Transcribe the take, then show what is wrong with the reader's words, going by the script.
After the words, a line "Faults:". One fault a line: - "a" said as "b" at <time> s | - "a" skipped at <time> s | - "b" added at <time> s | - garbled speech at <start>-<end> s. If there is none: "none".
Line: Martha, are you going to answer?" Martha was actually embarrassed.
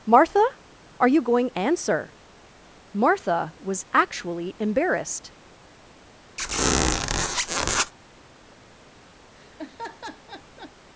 Martha, are you going answer?" Martha was actually embarrassed.
Faults:
- "to" skipped at 1.5 s